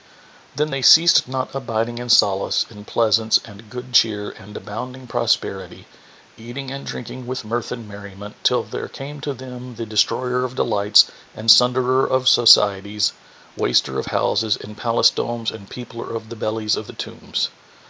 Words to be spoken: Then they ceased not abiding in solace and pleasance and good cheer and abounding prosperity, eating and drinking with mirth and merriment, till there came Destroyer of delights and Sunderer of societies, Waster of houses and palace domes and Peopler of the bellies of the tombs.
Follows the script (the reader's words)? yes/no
no